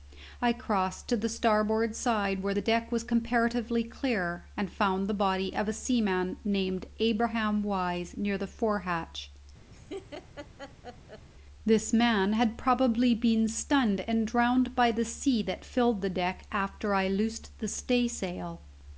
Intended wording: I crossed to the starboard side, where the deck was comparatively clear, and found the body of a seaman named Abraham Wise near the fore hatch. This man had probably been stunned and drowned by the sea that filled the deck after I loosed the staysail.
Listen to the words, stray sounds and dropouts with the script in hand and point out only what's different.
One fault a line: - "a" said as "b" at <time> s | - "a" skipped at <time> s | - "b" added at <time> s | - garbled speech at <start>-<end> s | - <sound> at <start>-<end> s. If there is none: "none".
- laugh at 9.7-11.3 s